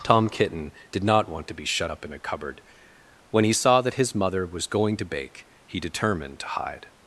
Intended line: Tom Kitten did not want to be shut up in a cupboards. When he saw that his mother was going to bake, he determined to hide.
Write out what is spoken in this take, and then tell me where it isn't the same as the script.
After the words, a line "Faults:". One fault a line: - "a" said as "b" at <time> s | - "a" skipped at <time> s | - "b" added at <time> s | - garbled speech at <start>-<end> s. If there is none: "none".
Tom Kitten did not want to be shut up in a cupboard. When he saw that his mother was going to bake, he determined to hide.
Faults:
- "cupboards" said as "cupboard" at 2.2 s